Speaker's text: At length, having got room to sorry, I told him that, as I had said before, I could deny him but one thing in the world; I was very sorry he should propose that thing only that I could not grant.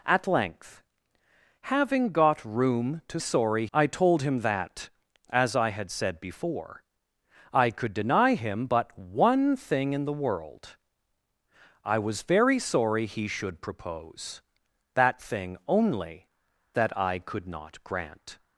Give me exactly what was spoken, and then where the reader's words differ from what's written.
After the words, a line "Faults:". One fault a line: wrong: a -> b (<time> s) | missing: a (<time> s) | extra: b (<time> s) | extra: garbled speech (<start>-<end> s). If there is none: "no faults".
At length, having got room to sorry, I told him that, as I had said before, I could deny him but one thing in the world; I was very sorry he should propose that thing only that I could not grant.
Faults:
no faults